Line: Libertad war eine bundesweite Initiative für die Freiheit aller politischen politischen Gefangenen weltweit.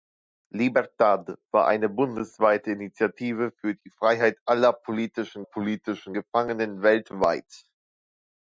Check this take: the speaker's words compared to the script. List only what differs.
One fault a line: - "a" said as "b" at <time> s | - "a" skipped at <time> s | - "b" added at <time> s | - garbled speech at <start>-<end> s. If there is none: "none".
none